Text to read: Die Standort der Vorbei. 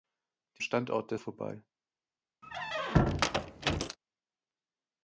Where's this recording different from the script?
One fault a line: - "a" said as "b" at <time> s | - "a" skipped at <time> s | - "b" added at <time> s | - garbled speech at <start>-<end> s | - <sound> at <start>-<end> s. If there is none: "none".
- squeak at 2.4-4.0 s